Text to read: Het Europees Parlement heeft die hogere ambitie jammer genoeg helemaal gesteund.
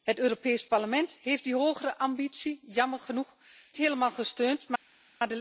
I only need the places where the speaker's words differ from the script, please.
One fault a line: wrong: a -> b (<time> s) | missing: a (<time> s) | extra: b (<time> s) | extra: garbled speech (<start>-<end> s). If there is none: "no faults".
no faults